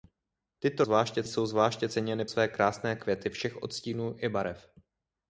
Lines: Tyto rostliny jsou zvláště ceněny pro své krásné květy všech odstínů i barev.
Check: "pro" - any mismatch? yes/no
yes